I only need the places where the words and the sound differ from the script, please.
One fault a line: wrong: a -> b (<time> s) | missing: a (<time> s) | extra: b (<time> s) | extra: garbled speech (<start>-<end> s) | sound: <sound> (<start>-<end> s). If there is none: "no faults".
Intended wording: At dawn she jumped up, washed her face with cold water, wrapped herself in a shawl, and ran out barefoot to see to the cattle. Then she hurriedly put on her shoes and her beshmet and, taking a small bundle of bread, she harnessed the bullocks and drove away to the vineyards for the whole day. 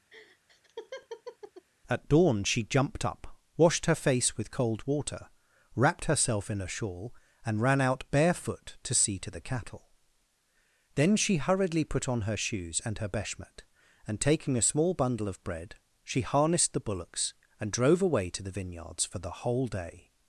sound: laugh (0.1-1.7 s)